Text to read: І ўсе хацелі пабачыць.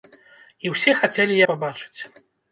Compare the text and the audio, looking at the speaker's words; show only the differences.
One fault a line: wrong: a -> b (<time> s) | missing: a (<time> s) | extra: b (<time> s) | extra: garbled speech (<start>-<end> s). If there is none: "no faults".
no faults